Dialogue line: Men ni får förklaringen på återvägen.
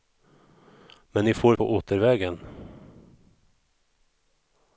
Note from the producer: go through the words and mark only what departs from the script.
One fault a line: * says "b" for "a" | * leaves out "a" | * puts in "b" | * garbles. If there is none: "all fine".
* leaves out "förklaringen"